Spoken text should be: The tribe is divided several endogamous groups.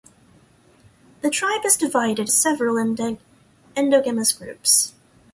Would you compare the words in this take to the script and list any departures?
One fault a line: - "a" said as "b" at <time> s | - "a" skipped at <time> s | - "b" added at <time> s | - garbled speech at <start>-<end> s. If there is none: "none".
none